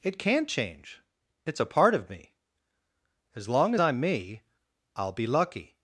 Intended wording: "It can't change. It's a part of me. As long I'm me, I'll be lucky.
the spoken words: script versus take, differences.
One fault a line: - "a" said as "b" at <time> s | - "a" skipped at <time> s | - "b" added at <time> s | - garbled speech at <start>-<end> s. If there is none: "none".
none